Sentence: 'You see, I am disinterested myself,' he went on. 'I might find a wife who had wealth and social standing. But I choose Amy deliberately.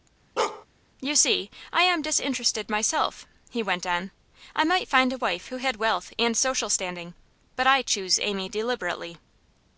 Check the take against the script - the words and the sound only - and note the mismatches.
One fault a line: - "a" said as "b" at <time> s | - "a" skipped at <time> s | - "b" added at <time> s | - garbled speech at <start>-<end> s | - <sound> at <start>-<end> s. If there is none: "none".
- bark at 0.4-0.7 s